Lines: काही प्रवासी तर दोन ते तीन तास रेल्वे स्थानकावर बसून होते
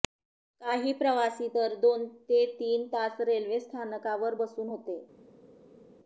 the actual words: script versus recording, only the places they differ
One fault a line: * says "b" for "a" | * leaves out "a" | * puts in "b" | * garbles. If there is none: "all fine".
all fine